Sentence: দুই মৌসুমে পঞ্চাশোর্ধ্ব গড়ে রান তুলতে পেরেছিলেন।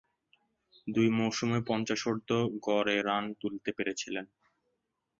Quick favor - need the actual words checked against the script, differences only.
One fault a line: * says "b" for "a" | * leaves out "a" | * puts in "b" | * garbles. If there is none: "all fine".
all fine